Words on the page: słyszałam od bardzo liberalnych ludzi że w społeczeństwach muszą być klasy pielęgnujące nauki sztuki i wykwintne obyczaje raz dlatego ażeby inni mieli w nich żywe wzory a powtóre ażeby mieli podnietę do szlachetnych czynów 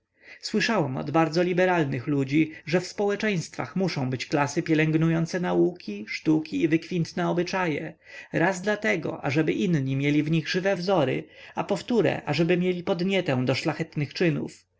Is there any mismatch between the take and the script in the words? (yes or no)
no